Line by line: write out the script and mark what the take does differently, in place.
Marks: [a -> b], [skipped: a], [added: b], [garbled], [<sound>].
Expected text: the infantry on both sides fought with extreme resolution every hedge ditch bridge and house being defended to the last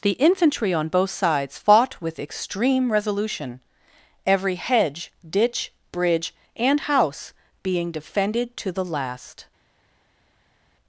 the infantry on both sides fought with extreme resolution every hedge ditch bridge and house being defended to the last